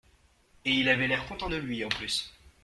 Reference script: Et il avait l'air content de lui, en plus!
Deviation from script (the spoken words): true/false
false